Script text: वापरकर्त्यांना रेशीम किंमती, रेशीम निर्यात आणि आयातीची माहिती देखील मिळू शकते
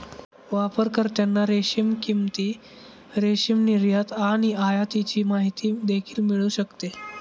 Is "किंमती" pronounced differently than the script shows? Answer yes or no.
no